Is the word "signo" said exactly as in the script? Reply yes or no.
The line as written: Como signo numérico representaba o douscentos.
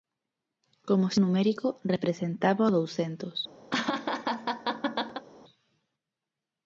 no